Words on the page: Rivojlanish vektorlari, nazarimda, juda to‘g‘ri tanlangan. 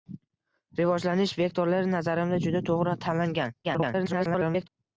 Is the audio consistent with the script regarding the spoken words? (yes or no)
no